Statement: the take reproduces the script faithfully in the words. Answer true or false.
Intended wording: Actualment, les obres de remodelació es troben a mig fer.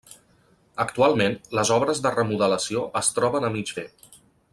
true